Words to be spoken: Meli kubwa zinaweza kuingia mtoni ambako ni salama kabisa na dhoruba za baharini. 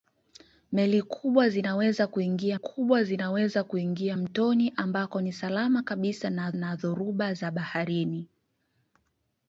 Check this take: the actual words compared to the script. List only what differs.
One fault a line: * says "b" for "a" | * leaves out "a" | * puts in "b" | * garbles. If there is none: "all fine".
* puts in "kubwa zinaweza kuingia"
* puts in "na"